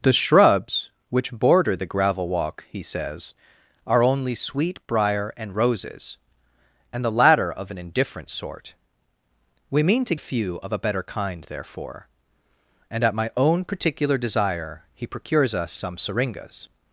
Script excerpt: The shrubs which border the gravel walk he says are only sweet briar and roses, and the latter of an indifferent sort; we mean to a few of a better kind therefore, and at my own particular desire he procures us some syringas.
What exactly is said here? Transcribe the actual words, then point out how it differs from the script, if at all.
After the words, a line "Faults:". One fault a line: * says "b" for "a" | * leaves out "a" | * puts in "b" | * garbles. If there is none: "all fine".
The shrubs which border the gravel walk he says are only sweet briar and roses, and the latter of an indifferent sort; we mean to a few of a better kind therefore, and at my own particular desire he procures us some syringas.
Faults:
all fine